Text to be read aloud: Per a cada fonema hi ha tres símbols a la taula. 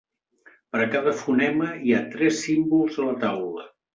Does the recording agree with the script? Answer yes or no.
yes